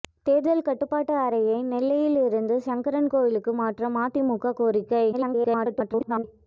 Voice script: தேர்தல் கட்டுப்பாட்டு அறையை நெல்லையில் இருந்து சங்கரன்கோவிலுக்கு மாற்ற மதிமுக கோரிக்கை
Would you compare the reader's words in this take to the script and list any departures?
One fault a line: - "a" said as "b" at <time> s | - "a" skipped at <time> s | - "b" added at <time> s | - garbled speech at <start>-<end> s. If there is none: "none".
- garbled speech at 5.1-6.2 s